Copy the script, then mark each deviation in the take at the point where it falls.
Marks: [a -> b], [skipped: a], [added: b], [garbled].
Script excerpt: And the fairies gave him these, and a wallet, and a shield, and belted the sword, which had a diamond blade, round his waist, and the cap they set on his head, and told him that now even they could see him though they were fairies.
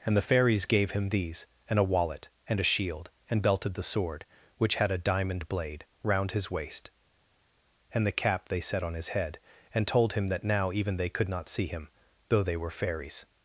And the fairies gave him these, and a wallet, and a shield, and belted the sword, which had a diamond blade, round his waist, and the cap they set on his head, and told him that now even they could [added: not] see him though they were fairies.